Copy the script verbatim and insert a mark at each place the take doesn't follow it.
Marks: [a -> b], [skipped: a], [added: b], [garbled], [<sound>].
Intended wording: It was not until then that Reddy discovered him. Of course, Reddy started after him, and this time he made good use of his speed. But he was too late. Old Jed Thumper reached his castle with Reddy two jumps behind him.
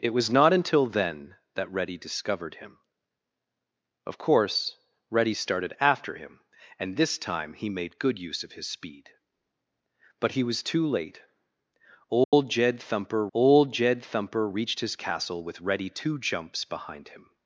It was not until then that Reddy discovered him. Of course, Reddy started after him, and this time he made good use of his speed. But he was too late. Old [dropout] Jed Thumper [added: old Jed Thumper] reached his castle with Reddy two jumps behind him.